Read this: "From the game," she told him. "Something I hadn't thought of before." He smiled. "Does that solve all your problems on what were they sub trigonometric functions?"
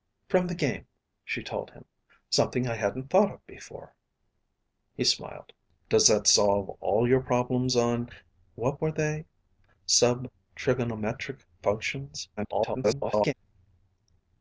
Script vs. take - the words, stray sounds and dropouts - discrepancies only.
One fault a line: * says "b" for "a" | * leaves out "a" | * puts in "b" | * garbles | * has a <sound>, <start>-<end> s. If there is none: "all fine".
* garbles